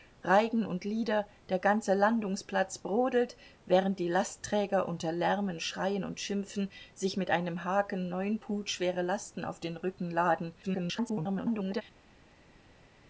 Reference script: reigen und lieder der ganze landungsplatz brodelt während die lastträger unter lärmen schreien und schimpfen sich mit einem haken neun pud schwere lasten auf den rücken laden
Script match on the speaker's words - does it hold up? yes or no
no